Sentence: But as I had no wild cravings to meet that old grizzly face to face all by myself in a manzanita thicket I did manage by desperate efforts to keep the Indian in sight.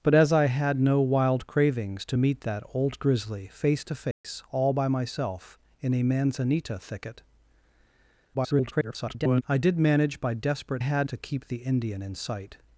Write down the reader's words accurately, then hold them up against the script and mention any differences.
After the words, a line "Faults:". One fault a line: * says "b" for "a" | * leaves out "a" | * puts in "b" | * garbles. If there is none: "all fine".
But as I had no wild cravings to meet that old grizzly face to face all by myself in a manzanita thicket [garbled] I did manage by desperate had to keep the Indian in sight.
Faults:
* garbles
* says "had" for "efforts"